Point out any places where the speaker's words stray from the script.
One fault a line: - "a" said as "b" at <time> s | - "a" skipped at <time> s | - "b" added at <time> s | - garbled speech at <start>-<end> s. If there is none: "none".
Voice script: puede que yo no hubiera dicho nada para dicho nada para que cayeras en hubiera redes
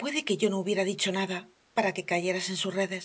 - "dicho nada para" skipped at 1.9 s
- "hubiera" said as "sus" at 2.6 s